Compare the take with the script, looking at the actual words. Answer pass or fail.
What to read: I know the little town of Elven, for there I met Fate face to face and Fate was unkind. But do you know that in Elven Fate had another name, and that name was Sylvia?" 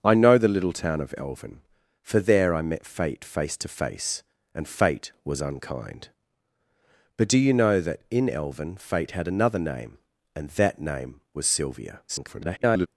fail